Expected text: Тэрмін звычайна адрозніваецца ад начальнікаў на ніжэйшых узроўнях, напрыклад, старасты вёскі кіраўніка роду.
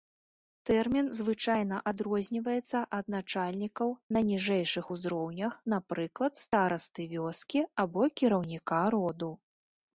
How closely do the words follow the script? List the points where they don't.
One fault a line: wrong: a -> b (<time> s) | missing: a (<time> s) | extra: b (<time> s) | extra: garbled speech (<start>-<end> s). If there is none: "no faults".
extra: або (7.9 s)